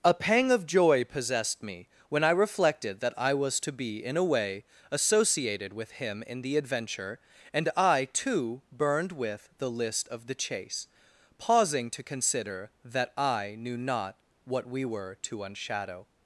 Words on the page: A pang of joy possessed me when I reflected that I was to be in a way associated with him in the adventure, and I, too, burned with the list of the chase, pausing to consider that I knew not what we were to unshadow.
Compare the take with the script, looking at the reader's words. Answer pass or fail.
pass